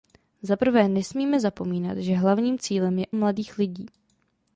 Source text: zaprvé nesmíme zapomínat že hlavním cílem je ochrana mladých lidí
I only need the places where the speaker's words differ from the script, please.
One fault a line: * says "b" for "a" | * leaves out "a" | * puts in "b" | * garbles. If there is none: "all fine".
* leaves out "ochrana"